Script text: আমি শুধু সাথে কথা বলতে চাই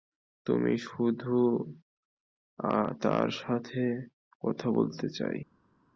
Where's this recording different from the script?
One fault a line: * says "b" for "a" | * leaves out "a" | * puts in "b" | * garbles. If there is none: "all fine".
* puts in "তার"